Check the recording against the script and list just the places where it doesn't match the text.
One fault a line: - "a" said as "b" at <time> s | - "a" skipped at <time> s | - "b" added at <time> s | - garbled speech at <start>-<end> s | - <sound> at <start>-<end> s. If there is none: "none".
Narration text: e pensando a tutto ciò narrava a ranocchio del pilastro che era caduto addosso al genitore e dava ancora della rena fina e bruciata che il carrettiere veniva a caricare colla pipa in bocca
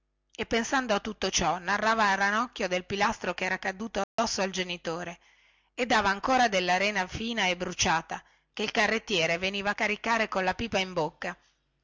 - dropout at 4.0-4.2 s